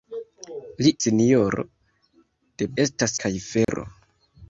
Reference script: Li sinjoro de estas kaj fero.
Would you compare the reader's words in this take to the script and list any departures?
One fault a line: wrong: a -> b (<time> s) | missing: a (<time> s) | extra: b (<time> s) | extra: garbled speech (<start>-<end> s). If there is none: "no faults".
no faults